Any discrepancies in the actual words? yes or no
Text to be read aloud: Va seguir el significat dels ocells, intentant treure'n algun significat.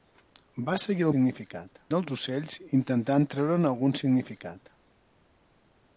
no